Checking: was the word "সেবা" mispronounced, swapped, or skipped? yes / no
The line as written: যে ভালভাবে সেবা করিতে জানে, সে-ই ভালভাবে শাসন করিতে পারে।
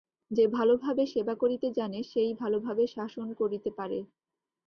no